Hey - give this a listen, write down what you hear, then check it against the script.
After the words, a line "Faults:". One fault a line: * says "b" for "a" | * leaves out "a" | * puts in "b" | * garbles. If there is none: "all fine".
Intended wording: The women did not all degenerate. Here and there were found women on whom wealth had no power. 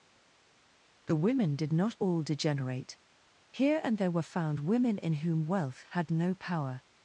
The women did not all degenerate. Here and there were found women in whom wealth had no power.
Faults:
* says "in" for "on"